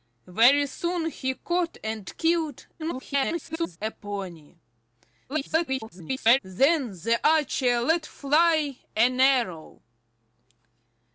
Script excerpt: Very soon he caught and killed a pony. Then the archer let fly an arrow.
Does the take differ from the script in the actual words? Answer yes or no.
yes